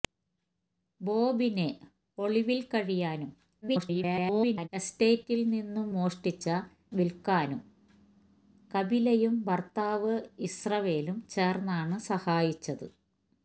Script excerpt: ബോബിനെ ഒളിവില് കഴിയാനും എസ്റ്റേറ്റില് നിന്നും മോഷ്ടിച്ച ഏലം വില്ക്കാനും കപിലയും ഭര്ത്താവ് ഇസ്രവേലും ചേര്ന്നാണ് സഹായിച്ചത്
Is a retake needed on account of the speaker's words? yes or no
yes